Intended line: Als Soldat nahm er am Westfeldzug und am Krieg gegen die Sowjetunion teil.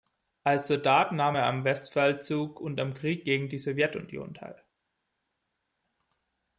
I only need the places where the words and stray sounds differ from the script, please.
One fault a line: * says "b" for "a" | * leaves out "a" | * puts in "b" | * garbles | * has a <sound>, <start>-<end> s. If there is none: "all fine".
all fine